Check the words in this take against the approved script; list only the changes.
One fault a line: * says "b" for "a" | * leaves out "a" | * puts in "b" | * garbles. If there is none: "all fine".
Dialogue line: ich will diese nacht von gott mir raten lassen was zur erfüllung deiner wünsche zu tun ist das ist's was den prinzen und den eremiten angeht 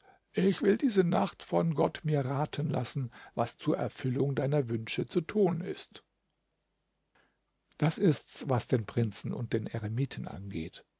all fine